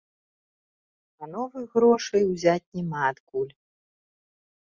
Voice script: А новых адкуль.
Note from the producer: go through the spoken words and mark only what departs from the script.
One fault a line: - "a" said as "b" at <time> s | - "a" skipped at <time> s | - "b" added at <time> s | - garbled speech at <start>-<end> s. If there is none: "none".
- "грошай узяць няма" added at 1.8 s